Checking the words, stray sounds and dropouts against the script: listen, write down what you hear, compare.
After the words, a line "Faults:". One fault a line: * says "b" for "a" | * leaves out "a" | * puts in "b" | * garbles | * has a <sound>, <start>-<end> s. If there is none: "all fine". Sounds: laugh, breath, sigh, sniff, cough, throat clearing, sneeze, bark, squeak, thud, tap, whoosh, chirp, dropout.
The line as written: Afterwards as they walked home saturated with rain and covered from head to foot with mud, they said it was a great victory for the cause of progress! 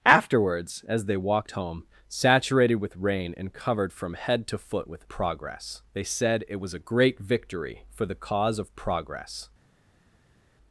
Afterwards as they walked home saturated with rain and covered from head to foot with progress, they said it was a great victory for the cause of progress!
Faults:
* says "progress" for "mud"